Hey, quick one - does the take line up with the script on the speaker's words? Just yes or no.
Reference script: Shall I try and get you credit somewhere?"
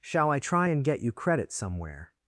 yes